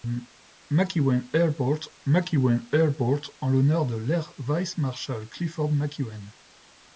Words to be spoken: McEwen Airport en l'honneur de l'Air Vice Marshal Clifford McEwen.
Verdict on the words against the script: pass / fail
fail